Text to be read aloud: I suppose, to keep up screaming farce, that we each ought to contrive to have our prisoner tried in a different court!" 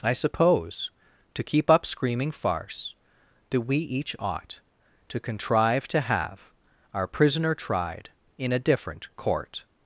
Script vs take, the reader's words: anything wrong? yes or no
no